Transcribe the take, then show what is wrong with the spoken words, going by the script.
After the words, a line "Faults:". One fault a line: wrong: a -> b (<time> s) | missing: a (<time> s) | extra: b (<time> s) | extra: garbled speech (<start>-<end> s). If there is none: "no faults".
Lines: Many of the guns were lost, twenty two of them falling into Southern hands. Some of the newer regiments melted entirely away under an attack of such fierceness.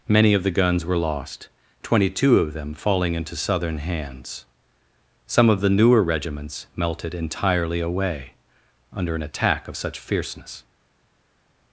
Many of the guns were lost, twenty two of them falling into Southern hands. Some of the newer regiments melted entirely away under an attack of such fierceness.
Faults:
no faults